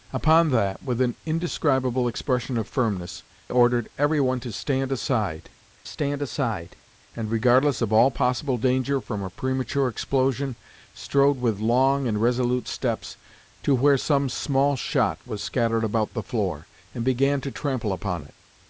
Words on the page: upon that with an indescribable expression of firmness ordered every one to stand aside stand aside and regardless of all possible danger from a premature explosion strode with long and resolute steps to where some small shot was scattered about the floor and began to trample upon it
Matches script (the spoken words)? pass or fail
pass